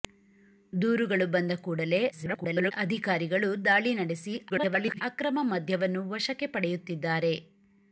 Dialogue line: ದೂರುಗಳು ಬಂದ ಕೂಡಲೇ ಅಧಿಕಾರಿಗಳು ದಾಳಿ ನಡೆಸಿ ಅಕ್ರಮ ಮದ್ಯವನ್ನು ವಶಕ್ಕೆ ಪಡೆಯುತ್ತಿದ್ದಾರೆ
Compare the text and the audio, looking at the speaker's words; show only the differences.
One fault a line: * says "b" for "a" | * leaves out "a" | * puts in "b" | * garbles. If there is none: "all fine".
* garbles
* garbles